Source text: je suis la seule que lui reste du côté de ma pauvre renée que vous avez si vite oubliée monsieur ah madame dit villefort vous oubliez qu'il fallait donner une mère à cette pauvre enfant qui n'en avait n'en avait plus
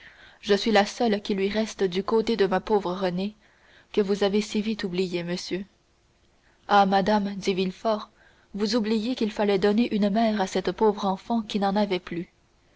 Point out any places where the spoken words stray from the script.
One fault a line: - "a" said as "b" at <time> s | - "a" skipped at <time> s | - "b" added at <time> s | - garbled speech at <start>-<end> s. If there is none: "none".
- "que" said as "qui" at 1.2 s
- "n'en avait" skipped at 12.0 s